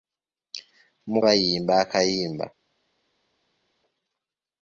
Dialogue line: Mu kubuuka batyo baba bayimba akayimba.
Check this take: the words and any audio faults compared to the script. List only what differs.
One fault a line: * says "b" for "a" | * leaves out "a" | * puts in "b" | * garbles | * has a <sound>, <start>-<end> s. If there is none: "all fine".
* leaves out "kubuuka batyo baba"